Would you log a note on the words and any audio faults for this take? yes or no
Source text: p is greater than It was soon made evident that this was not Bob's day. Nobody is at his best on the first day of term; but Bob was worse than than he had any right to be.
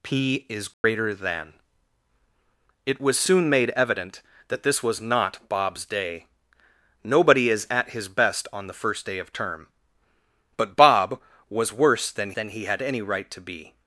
yes